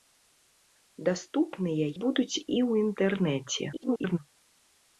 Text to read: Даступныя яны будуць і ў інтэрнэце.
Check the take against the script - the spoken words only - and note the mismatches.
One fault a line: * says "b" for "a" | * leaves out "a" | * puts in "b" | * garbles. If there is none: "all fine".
* leaves out "яны"
* garbles